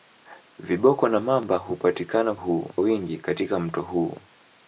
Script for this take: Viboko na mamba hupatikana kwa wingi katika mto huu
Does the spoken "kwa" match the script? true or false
false